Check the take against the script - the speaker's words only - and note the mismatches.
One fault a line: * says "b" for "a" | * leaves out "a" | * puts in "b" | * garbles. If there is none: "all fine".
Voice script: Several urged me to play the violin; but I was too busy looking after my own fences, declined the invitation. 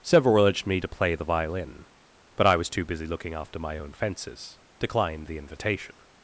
all fine